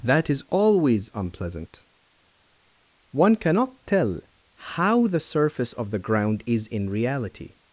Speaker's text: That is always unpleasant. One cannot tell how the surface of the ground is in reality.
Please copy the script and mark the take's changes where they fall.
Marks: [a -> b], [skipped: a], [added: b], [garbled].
That is always unpleasant. One cannot tell how the surface of the ground is in reality.